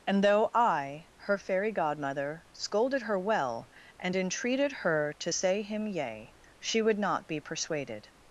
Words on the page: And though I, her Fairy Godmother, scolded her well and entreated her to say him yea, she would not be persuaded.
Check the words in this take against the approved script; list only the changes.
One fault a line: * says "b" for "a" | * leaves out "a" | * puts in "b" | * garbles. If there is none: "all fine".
all fine